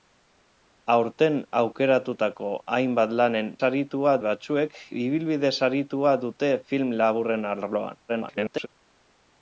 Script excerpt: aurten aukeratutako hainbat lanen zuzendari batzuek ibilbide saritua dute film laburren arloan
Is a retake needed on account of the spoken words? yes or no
yes